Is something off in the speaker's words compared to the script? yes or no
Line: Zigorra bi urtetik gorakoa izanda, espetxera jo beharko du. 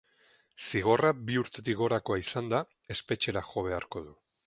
no